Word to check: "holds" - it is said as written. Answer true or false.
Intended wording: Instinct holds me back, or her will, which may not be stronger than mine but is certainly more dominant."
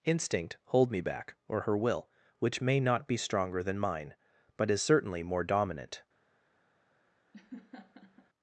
false